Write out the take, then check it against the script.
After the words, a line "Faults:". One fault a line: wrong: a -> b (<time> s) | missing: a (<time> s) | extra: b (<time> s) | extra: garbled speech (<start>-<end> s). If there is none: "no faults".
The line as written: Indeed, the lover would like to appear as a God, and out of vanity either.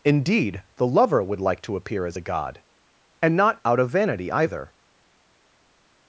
Indeed, the lover would like to appear as a God, and not out of vanity either.
Faults:
extra: not (3.3 s)